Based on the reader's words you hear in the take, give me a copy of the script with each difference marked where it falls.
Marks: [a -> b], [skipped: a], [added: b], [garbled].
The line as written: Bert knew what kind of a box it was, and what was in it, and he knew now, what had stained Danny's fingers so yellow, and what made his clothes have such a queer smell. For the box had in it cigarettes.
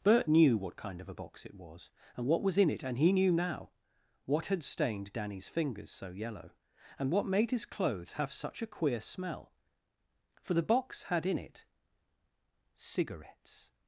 Bert knew what kind of a box it was, and what was in it, and he knew now, what had stained Danny's fingers so yellow, and what made his clothes have such a queer smell. For the box had in it cigarettes.